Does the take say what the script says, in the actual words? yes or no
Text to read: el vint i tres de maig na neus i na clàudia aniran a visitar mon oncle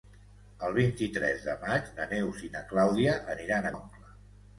no